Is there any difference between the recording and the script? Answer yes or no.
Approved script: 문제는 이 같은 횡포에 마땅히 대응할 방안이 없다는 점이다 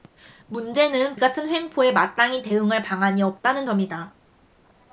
no